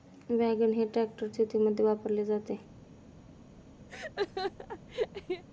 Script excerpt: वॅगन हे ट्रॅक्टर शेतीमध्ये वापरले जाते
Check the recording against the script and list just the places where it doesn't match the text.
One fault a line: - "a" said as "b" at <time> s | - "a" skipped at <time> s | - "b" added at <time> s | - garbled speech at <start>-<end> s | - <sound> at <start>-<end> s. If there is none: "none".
- laugh at 3.9-5.4 s